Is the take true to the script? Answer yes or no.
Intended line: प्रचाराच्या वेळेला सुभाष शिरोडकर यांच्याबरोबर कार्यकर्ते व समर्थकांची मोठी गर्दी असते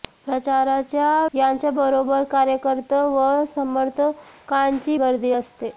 no